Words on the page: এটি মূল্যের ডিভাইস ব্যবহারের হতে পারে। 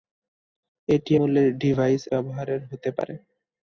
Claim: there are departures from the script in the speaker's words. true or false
false